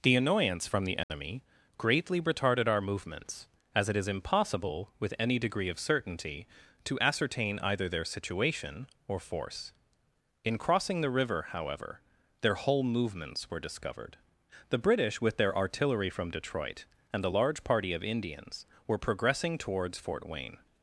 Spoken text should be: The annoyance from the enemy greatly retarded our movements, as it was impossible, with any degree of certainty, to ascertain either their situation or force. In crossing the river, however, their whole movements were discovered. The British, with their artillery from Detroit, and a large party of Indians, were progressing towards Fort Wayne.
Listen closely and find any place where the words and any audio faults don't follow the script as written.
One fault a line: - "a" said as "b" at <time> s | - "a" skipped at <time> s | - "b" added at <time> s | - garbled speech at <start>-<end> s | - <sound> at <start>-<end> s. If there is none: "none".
- dropout at 1.0-1.1 s
- "was" said as "is" at 4.0 s